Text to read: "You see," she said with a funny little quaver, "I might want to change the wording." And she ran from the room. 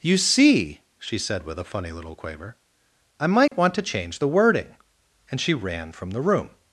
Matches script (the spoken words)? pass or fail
pass